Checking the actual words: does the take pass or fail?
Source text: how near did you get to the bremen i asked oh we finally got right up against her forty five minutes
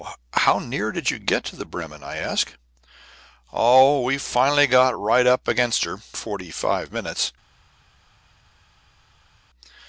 pass